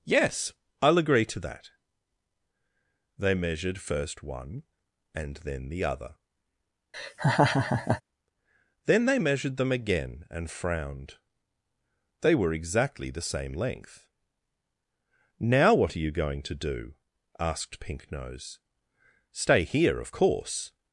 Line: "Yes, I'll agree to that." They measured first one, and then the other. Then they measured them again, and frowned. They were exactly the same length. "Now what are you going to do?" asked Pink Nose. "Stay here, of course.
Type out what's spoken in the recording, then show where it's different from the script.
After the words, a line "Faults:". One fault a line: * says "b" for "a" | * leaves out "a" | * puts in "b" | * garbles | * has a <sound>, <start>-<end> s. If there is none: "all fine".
"Yes, I'll agree to that." They measured first one, and then the other. Then they measured them again, and frowned. They were exactly the same length. "Now what are you going to do?" asked Pink Nose. "Stay here, of course.
Faults:
* has a laugh, 6.9-8.0 s